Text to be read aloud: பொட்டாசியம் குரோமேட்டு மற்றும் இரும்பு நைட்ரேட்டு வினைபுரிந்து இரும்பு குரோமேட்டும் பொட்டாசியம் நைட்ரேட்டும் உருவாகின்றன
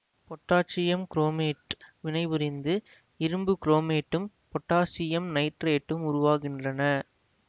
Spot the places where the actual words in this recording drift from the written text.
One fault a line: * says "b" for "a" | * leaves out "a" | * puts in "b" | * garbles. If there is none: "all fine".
* leaves out "மற்றும் இரும்பு நைட்ரேட்டு"